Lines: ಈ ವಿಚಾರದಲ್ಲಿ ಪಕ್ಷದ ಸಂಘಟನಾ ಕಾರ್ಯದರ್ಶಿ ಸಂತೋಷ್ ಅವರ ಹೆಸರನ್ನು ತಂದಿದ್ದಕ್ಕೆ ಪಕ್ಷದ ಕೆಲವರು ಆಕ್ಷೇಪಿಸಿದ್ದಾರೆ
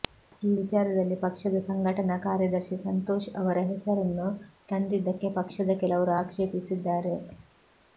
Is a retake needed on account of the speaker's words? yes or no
no